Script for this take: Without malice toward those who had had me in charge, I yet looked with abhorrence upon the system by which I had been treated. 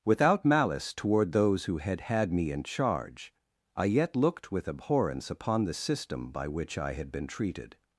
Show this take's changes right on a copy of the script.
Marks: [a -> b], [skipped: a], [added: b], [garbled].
Without malice toward those who had had me in charge, I yet looked with abhorrence upon the system by which I had been treated.